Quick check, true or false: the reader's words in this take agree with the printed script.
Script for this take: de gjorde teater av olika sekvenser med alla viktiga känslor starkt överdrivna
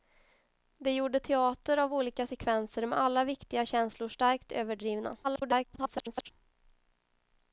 false